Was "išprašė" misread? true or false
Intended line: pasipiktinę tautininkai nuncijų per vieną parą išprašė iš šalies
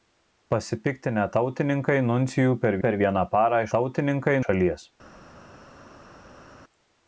true